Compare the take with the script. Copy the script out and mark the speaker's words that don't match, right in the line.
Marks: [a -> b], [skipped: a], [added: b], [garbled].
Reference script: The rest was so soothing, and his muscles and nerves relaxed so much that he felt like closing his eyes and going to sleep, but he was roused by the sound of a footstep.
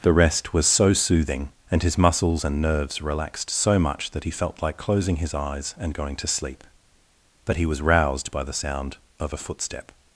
The rest was so soothing, and his muscles and nerves relaxed so much that he felt like closing his eyes and going to sleep, but he was roused by the sound of a footstep.